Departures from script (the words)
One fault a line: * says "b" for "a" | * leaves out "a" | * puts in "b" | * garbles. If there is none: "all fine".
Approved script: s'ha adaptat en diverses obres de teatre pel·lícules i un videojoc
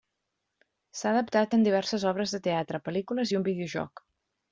all fine